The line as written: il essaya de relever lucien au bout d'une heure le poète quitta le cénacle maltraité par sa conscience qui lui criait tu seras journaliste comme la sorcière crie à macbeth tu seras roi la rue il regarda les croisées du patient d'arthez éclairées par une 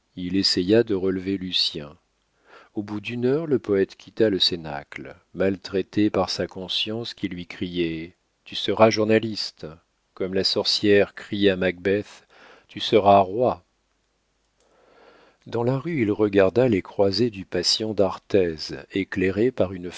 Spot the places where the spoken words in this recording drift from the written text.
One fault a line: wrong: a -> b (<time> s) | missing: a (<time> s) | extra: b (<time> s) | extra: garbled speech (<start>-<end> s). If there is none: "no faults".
extra: dans (15.5 s)